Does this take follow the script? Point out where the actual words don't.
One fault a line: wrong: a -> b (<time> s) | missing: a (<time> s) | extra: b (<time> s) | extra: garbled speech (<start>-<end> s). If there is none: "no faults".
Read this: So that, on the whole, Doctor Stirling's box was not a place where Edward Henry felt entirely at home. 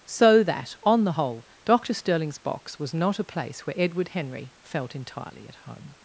no faults